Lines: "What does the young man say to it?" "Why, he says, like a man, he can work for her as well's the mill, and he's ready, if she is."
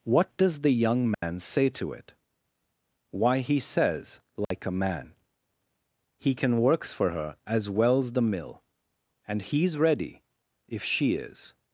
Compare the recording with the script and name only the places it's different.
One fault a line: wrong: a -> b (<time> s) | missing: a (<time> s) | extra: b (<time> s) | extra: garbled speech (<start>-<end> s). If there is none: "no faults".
wrong: work -> works (6.6 s)